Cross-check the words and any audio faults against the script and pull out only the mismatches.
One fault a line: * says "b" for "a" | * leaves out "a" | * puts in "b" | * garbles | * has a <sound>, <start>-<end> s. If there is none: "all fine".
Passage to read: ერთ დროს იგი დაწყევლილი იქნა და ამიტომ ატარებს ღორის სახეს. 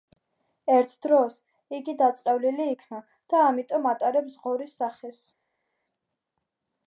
all fine